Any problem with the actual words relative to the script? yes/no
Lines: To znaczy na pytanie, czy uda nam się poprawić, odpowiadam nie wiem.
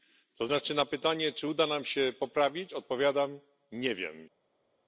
no